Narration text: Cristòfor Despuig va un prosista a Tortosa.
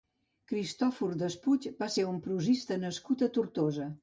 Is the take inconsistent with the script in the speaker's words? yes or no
yes